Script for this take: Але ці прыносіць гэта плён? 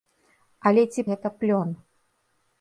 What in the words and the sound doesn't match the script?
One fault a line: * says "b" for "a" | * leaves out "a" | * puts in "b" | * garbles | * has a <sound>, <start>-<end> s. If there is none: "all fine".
* leaves out "прыносіць"